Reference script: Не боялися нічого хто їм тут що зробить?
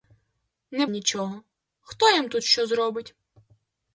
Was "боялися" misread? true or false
true